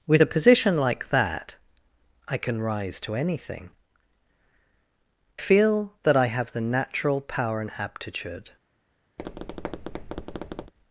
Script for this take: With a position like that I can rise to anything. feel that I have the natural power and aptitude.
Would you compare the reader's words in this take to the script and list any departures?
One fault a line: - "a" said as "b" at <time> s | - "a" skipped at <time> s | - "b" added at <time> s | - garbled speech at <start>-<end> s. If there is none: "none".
none